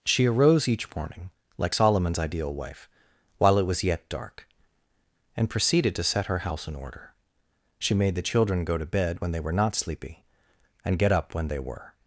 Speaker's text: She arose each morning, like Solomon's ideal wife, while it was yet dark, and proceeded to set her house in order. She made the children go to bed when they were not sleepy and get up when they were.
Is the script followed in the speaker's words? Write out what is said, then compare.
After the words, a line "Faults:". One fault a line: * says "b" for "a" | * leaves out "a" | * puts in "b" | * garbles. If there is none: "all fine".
She arose each morning, like Solomon's ideal wife, while it was yet dark, and proceeded to set her house in order. She made the children go to bed when they were not sleepy and get up when they were.
Faults:
all fine